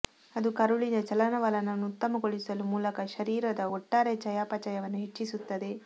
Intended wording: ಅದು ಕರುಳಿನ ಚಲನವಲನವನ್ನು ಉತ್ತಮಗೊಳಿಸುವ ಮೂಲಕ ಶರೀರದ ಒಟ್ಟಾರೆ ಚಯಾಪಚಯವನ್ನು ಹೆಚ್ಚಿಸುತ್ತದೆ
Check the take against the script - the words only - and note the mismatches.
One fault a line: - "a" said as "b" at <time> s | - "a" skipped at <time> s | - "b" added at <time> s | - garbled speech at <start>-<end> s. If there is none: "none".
none